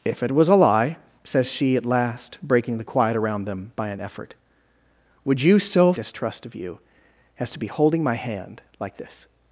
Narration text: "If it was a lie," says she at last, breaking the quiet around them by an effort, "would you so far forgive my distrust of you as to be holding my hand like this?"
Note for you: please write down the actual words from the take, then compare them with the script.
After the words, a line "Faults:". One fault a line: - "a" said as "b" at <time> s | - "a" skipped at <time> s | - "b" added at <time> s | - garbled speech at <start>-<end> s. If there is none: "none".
"If it was a lie," says she at last, breaking the quiet around them by an effort, "would you so distrust of you as to be holding my hand like this?"
Faults:
- "far forgive my" skipped at 5.9 s